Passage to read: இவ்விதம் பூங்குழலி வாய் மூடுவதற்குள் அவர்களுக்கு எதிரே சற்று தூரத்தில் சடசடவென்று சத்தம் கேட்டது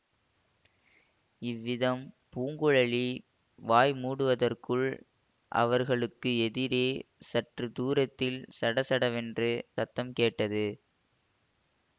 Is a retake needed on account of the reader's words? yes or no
no